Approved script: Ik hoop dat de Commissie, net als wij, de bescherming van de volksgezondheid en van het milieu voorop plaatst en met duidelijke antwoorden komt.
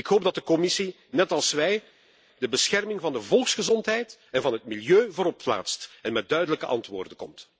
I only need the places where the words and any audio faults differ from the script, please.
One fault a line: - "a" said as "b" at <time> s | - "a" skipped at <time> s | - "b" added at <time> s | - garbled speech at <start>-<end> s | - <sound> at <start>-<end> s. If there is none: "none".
none